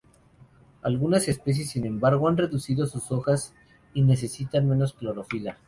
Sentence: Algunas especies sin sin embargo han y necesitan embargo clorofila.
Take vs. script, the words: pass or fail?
fail